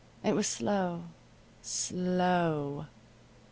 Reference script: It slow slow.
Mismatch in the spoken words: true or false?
true